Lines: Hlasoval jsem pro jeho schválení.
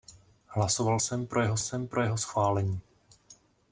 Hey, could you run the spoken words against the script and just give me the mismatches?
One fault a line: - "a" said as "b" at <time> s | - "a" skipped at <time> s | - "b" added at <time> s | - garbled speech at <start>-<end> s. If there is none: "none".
- "jsem pro jeho" added at 1.6 s